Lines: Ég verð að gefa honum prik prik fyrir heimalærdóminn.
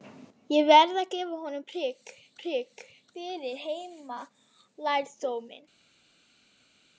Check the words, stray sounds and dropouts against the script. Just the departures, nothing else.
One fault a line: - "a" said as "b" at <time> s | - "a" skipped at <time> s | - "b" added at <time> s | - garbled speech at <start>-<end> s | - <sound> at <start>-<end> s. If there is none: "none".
none